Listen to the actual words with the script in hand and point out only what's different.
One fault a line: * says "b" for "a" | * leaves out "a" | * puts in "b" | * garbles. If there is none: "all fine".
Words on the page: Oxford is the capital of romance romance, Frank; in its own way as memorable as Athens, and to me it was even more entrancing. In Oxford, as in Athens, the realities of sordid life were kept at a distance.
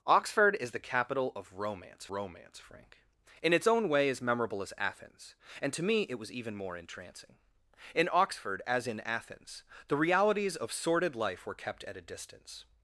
all fine